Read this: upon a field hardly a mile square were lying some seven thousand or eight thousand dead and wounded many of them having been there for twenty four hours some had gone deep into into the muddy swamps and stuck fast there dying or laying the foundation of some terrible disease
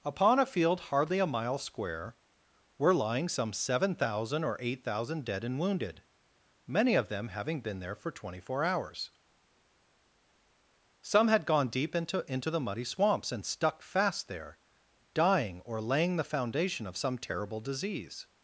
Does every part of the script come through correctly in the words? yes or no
yes